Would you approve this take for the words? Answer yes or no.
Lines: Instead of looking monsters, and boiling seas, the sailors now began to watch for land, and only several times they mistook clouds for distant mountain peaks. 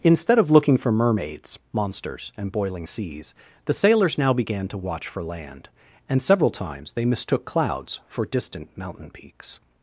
no